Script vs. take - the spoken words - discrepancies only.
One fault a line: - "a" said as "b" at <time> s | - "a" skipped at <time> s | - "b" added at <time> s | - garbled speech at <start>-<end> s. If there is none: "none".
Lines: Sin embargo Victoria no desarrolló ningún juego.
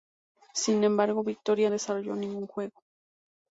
- "no" skipped at 1.7 s